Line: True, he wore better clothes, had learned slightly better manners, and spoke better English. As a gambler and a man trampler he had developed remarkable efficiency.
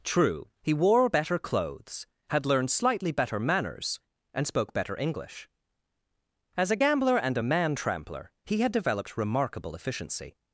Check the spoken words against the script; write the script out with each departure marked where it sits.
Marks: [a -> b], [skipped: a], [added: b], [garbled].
True, he wore better clothes, had learned slightly better manners, and spoke better English. As a gambler and a man trampler he had developed remarkable efficiency.